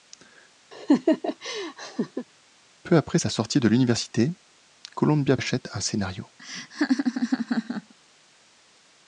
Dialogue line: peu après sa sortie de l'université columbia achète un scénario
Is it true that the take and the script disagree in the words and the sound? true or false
true